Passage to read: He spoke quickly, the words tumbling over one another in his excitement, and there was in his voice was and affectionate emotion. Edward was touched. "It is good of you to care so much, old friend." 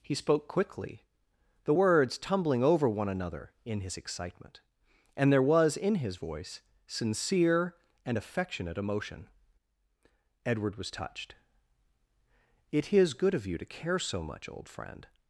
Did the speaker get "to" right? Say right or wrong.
right